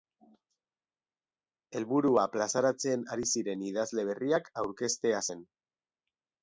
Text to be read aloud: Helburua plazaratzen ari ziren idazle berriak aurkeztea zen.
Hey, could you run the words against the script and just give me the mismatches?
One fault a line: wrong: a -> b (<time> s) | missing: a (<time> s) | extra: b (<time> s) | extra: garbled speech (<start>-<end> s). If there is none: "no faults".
no faults